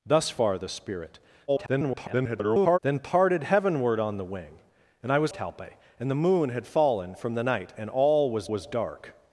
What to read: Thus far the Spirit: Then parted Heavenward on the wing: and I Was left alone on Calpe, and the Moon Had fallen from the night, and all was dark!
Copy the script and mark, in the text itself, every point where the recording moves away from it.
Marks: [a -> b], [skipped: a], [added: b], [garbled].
Thus far the Spirit: [garbled] Then parted Heavenward on the wing: and I Was [skipped: left alone on] Calpe, and the Moon Had fallen from the night, and all was [added: was] dark!